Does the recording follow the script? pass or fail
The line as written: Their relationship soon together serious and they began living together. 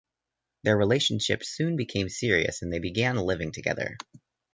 fail